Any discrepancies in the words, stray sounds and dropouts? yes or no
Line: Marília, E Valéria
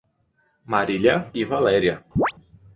yes